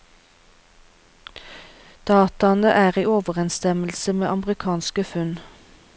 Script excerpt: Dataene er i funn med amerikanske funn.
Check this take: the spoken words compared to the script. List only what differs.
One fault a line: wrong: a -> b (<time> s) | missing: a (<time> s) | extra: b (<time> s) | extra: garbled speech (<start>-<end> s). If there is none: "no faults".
wrong: funn -> overensstemmelse (3.1 s)